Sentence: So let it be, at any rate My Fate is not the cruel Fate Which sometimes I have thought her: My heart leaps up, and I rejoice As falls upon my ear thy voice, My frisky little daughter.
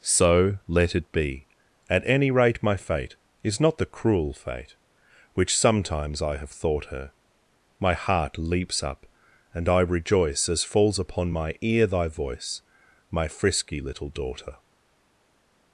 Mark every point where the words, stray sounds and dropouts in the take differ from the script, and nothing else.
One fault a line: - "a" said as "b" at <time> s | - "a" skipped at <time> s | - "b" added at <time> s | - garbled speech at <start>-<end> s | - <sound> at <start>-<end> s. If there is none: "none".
none